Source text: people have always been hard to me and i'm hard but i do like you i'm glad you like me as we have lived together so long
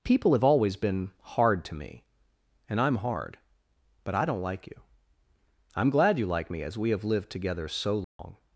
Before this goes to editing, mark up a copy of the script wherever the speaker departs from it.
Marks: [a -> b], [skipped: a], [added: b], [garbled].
people have always been hard to me and i'm hard but i [do -> don't] like you i'm glad you like me as we have lived together so long